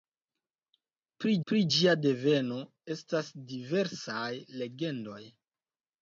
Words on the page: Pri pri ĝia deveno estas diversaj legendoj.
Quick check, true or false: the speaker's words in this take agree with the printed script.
true